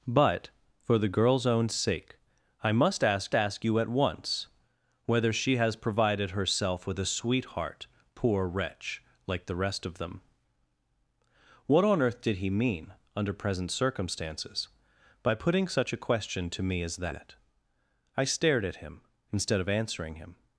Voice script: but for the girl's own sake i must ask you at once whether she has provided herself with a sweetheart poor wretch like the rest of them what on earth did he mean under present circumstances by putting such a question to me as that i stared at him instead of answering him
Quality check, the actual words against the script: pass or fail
fail